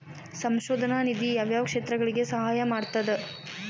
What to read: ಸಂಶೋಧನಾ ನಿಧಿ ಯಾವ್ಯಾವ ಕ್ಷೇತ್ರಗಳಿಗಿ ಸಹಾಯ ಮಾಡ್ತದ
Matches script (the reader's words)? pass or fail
pass